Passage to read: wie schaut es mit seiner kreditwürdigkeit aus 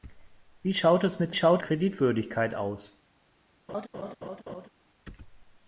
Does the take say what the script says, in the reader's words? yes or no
no